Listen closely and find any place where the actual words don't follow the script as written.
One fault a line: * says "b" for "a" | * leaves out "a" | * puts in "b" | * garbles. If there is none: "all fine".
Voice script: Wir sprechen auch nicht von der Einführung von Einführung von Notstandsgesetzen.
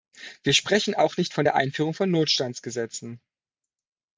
* leaves out "Einführung von"